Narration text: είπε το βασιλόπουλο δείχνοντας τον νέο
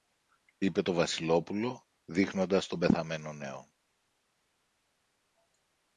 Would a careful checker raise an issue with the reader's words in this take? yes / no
yes